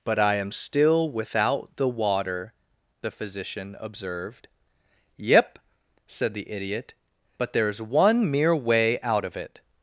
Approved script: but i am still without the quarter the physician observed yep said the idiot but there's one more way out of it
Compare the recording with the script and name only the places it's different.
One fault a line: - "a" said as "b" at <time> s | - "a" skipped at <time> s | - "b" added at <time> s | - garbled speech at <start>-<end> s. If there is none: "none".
- "quarter" said as "water" at 1.9 s
- "more" said as "mere" at 8.3 s